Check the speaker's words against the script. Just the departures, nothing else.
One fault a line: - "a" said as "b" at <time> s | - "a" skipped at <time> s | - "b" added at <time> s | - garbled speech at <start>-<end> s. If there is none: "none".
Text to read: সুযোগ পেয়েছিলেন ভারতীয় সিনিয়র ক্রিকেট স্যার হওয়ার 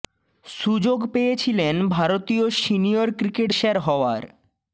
none